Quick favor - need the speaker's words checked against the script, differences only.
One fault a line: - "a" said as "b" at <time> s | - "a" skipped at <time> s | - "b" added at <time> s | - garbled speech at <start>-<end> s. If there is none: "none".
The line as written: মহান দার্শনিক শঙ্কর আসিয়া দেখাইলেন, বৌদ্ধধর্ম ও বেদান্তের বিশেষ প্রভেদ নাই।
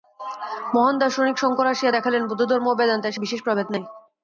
none